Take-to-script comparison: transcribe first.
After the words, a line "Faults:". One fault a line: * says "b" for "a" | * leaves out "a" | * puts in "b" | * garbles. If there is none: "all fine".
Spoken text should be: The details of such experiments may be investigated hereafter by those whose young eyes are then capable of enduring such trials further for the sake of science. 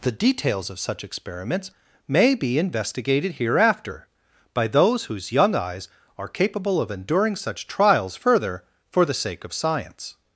The details of such experiments may be investigated hereafter by those whose young eyes are capable of enduring such trials further for the sake of science.
Faults:
* leaves out "then"